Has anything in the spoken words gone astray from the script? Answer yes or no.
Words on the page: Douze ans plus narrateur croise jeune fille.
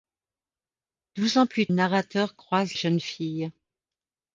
no